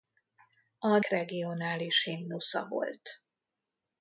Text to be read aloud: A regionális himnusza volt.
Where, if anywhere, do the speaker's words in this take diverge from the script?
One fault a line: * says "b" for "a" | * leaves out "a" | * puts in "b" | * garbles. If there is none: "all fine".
all fine